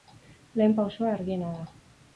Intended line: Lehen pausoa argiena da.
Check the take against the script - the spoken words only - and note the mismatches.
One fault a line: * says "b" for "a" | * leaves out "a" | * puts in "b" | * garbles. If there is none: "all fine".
all fine